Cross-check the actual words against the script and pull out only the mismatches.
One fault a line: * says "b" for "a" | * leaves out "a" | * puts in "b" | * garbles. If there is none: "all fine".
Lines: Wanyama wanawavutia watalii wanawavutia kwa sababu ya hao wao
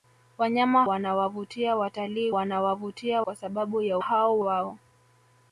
all fine